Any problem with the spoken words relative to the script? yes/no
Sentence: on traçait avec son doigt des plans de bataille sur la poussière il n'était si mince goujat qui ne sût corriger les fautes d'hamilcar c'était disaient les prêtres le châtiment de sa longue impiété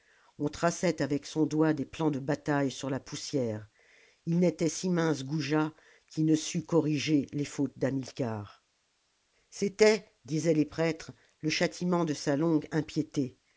no